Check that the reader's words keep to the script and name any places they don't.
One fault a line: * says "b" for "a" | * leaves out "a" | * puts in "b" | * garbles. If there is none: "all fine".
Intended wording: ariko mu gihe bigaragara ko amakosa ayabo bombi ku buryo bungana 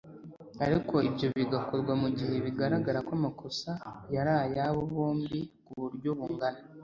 * puts in "ibyo bigakorwa"
* puts in "yari"